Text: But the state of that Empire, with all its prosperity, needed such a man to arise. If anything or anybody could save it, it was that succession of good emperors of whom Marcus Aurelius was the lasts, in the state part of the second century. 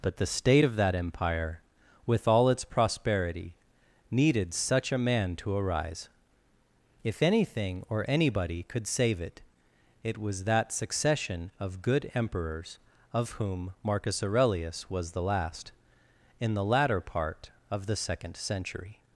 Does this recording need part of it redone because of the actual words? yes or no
yes